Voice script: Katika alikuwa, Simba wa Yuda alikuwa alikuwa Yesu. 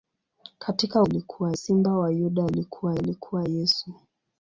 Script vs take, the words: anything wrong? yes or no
no